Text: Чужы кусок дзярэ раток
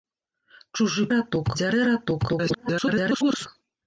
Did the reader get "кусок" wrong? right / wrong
wrong